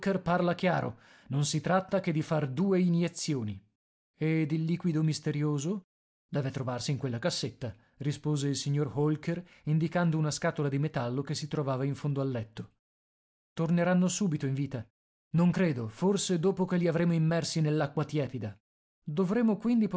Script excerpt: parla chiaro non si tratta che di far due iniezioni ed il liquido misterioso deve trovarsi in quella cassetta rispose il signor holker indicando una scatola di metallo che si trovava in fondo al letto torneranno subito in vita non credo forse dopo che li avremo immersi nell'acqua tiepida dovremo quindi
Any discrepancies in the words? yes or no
no